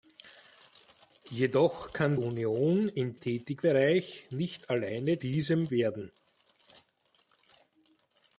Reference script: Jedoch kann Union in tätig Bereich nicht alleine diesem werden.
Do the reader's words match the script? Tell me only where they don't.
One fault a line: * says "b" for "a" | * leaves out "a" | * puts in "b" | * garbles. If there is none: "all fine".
all fine